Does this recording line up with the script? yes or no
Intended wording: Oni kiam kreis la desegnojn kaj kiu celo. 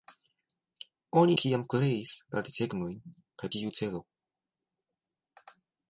yes